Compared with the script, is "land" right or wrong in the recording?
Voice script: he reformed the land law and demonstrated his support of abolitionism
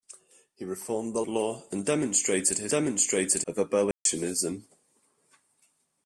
wrong